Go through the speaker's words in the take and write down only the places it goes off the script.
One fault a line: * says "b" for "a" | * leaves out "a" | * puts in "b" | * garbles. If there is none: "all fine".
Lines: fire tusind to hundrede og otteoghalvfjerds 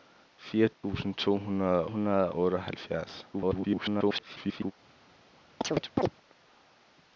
* puts in "hundrede"
* garbles